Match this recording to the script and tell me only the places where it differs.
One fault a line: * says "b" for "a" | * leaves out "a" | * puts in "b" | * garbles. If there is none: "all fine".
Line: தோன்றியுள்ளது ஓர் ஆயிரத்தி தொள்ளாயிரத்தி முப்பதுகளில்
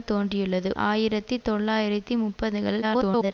* leaves out "ஓர்"
* garbles